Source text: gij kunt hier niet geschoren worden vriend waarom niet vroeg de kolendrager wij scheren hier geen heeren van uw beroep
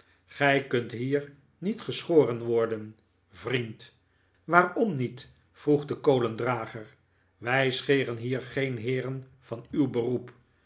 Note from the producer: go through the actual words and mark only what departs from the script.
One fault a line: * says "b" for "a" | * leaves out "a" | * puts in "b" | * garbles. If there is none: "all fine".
all fine